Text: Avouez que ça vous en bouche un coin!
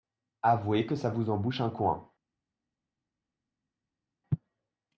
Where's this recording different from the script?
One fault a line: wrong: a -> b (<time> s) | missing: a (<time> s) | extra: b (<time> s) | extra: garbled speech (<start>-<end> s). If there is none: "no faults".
no faults